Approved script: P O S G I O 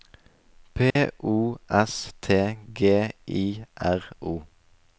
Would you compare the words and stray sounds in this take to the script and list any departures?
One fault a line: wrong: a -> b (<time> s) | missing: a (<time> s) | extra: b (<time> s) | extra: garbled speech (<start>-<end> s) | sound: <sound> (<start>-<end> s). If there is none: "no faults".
sound: dropout (0.9-1.0 s)
extra: T (2.2 s)
extra: R (3.8 s)